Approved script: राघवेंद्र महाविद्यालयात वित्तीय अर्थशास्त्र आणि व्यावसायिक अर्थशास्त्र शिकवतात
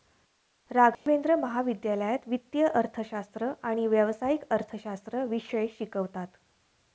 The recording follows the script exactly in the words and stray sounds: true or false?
false